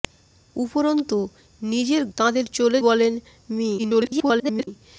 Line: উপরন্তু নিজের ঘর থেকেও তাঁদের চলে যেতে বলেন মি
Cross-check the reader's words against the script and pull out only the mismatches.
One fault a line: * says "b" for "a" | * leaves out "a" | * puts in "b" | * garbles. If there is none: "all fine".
* leaves out "ঘর থেকেও"
* leaves out "যেতে"
* garbles